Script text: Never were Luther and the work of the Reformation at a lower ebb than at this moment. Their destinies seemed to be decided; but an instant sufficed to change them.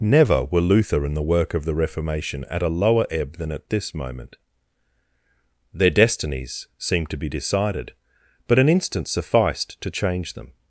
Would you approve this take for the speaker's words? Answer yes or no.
yes